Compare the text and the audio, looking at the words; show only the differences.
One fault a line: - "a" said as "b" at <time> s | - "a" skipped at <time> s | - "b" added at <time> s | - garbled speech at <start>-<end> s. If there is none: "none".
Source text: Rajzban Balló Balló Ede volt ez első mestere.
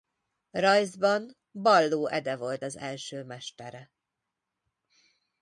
- "Balló" skipped at 2.1 s
- "ez" said as "az" at 2.6 s